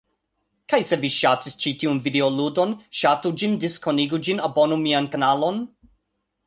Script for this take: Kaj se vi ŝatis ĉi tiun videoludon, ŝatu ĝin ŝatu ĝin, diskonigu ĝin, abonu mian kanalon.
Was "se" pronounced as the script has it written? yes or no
yes